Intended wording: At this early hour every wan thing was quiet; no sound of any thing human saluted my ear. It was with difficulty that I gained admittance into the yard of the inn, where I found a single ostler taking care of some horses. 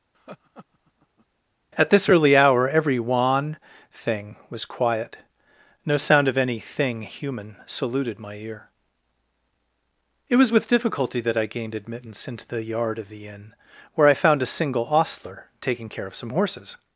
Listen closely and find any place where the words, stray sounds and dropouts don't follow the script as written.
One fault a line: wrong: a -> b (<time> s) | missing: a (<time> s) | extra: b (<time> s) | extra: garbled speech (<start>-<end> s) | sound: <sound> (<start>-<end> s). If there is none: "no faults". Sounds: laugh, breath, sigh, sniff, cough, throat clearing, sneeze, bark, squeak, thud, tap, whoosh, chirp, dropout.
sound: laugh (0.1-1.3 s)